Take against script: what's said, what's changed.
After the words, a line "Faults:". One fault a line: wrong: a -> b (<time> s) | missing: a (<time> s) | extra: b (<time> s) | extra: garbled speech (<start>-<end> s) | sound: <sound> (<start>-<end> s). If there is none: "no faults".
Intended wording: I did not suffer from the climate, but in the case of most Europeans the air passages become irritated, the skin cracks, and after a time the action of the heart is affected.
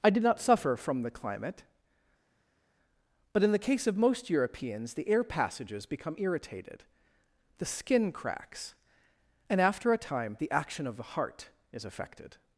I did not suffer from the climate, but in the case of most Europeans the air passages become irritated, the skin cracks, and after a time the action of the heart is affected.
Faults:
no faults